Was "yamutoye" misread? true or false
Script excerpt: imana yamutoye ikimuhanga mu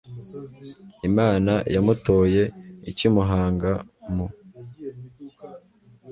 false